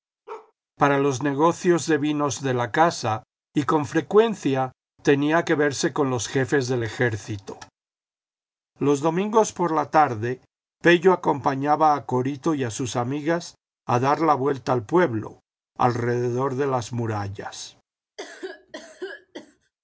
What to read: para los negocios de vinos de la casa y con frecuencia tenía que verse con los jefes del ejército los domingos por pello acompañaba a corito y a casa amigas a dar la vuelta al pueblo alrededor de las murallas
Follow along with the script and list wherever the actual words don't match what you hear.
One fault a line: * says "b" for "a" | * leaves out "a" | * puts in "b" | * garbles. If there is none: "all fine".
* puts in "la tarde"
* says "sus" for "casa"